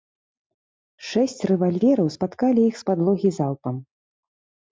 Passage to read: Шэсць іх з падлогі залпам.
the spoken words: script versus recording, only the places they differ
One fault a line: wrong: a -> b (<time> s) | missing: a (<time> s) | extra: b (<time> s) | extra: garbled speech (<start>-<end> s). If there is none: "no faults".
extra: рэвальвераў спаткалі (1.5 s)